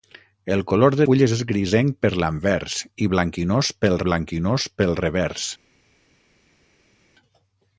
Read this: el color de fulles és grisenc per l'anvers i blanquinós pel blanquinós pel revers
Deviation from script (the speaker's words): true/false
false